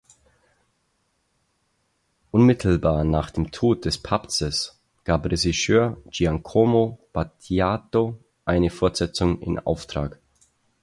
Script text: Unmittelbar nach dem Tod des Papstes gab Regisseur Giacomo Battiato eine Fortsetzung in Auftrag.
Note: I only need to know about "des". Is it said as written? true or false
true